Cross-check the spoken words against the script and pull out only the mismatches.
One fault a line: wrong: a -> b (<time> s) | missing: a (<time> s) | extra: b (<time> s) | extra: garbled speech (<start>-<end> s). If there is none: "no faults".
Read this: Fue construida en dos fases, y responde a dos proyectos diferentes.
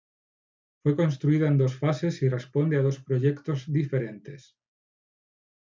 no faults